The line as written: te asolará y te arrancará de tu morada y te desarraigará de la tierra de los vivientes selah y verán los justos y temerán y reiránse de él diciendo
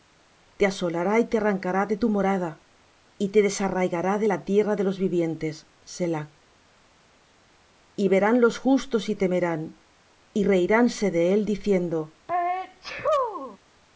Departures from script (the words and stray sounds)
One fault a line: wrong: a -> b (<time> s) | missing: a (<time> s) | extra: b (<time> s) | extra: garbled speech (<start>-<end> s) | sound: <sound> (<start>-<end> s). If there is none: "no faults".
sound: sneeze (12.3-13.6 s)